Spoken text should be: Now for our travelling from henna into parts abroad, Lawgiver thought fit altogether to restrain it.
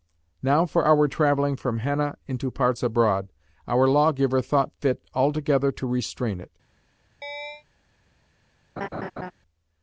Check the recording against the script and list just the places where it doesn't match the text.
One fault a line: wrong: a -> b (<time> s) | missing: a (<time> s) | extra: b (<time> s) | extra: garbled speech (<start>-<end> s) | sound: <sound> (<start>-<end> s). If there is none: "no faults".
extra: our (3.7 s)
sound: chirp (7.2-7.6 s)
sound: laugh (8.8-9.3 s)